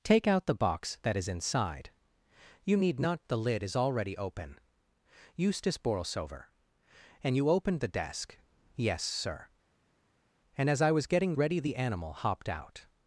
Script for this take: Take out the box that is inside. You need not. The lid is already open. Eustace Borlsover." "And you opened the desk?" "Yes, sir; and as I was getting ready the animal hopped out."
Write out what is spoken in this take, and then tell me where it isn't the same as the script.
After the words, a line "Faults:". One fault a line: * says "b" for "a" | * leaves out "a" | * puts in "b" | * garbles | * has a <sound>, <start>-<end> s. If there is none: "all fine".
Take out the box that is inside. You need not. The lid is already open. Eustace Borlsover." "And you opened the desk?" "Yes, sir; and as I was getting ready the animal hopped out."
Faults:
all fine